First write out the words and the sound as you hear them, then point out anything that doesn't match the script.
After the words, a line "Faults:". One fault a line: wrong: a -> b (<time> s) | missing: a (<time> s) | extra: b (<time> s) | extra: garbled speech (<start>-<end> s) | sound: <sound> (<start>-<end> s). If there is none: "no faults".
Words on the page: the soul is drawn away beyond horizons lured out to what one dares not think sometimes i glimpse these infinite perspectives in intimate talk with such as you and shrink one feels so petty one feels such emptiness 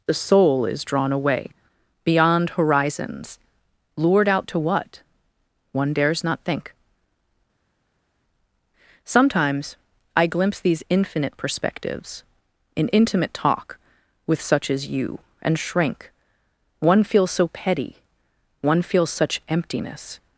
the soul is drawn away beyond horizons lured out to what one dares not think sometimes i glimpse these infinite perspectives in intimate talk with such as you and shrink one feels so petty one feels such emptiness
Faults:
no faults